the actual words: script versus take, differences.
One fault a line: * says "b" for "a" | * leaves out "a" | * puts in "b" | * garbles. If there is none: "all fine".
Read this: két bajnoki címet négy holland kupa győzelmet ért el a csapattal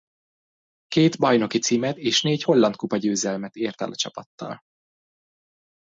* puts in "és"